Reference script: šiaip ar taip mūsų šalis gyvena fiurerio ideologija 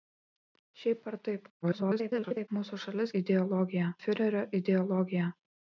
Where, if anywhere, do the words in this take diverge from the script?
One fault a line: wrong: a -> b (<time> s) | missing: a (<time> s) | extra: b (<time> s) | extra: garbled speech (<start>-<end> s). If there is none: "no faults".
extra: garbled speech (1.6-2.5 s)
wrong: gyvena -> ideologija (3.2 s)